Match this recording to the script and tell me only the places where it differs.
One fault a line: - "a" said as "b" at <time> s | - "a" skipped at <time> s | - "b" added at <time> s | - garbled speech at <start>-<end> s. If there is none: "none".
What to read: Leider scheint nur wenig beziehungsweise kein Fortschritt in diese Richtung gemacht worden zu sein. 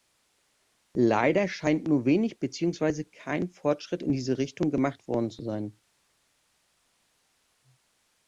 none